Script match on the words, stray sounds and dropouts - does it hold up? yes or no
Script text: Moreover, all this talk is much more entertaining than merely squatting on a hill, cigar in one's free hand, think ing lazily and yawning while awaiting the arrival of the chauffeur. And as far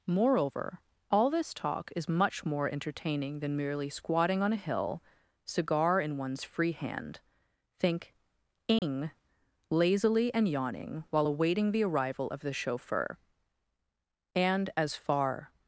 no